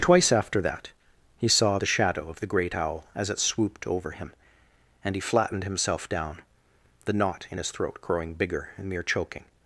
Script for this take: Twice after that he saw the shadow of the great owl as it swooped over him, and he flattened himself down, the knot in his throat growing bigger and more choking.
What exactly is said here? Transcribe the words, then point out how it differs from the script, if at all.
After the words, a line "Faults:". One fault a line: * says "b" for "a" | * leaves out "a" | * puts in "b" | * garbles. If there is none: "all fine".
Twice after that he saw the shadow of the great owl as it swooped over him, and he flattened himself down, the knot in his throat growing bigger and mere choking.
Faults:
* says "mere" for "more"